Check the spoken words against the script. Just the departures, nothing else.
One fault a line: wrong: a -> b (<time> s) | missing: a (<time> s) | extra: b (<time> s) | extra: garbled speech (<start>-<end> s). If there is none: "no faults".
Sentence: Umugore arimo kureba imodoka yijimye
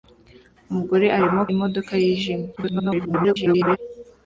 missing: kureba (1.4 s)
extra: garbled speech (2.6-3.8 s)